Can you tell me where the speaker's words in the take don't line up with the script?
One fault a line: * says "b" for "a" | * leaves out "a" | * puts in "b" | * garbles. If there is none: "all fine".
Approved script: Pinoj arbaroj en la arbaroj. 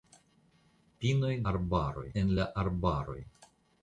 all fine